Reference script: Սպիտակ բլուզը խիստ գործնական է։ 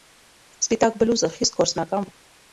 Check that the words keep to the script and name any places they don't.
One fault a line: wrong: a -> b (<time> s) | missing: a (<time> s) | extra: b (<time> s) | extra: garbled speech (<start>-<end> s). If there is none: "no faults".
no faults